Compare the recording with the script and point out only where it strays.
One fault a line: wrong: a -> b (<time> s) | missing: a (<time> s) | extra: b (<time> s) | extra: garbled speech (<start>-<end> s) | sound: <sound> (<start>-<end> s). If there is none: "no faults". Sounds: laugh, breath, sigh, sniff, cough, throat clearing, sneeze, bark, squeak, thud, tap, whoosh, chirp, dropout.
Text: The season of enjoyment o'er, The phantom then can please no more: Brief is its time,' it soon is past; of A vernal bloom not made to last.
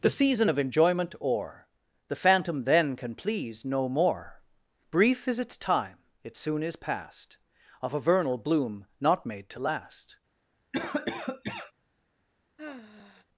sound: cough (10.7-11.7 s)
sound: sigh (12.6-13.3 s)